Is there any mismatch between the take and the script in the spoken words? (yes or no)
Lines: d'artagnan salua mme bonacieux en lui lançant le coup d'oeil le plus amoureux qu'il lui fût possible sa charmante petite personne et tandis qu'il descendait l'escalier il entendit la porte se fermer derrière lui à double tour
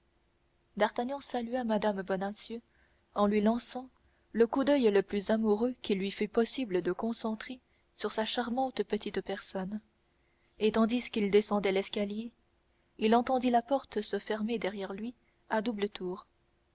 yes